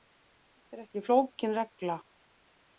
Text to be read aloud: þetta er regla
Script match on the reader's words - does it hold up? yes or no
no